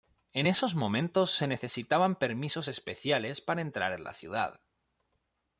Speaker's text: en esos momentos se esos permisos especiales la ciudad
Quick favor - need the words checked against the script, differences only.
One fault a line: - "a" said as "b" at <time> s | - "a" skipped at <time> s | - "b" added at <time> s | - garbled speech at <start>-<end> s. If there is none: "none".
- "esos" said as "necesitaban" at 1.5 s
- "para entrar en" added at 3.4 s